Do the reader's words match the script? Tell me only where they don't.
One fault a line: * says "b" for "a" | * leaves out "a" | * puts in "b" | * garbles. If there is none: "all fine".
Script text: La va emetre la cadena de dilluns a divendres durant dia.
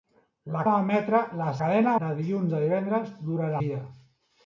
all fine